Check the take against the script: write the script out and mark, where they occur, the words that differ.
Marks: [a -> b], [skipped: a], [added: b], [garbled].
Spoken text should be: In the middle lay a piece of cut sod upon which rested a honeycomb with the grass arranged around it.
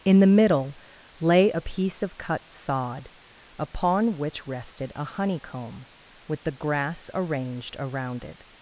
In the middle lay a piece of cut sod upon which rested a honeycomb with the grass arranged around it.